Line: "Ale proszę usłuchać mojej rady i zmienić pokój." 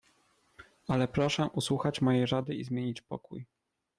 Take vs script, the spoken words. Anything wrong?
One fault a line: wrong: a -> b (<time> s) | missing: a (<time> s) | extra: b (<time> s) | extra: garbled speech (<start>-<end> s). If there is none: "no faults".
no faults